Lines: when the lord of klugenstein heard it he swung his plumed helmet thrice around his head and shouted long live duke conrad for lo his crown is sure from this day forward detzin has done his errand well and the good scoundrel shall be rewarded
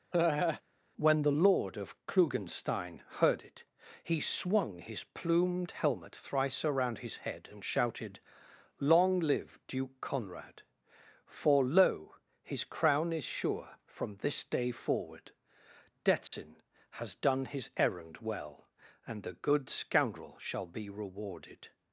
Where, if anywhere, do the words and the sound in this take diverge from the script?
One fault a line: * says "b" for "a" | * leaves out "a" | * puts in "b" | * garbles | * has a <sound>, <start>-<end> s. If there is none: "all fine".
* has a laugh, 0.1-0.6 s
* has a dropout, 16.3-16.3 s